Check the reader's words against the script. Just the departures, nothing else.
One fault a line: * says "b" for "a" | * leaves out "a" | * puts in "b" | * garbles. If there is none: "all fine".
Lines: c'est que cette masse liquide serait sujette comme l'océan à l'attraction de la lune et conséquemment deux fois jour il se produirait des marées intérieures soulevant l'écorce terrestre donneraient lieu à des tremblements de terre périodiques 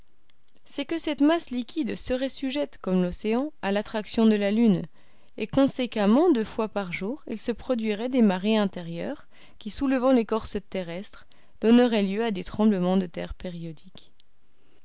* puts in "par"
* puts in "qui"